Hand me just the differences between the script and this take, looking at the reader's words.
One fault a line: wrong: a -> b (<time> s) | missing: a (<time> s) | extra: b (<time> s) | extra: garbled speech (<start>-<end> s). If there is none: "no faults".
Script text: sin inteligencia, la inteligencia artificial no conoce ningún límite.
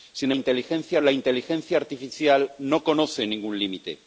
no faults